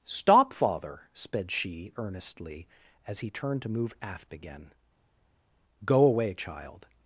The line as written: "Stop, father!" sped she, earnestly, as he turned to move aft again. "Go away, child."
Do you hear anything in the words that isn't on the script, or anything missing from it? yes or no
no